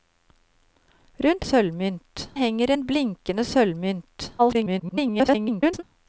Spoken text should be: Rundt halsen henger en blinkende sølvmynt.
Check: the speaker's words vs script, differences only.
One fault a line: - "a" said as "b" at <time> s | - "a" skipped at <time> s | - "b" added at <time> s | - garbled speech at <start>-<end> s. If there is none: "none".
- "halsen" said as "sølvmynt" at 1.4 s
- garbled speech at 4.4-5.8 s